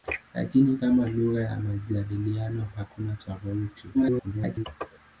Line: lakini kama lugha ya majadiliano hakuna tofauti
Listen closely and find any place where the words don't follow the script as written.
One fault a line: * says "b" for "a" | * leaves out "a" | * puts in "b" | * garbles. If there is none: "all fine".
* garbles